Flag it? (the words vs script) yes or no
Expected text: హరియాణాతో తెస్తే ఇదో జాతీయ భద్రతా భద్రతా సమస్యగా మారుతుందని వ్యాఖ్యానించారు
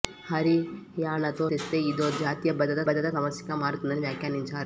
no